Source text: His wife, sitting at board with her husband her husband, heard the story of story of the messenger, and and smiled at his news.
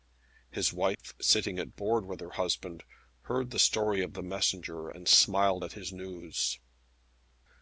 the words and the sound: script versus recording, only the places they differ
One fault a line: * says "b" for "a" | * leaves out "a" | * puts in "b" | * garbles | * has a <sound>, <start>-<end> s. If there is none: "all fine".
* has a dropout, 0.9-1.0 s
* leaves out "her husband"
* leaves out "story of"
* leaves out "and"